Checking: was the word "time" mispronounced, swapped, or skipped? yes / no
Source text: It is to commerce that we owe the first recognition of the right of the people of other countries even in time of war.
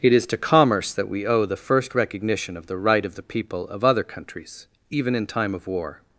no